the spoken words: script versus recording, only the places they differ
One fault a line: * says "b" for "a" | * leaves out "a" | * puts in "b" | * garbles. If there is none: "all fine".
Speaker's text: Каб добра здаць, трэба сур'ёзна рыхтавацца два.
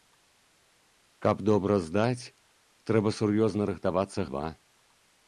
all fine